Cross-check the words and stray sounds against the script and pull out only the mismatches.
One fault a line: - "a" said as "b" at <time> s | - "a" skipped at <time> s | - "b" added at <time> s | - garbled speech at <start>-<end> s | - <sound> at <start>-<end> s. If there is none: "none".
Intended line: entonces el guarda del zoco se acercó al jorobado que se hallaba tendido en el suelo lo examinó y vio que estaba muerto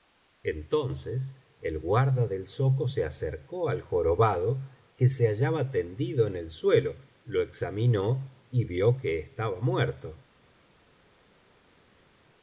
none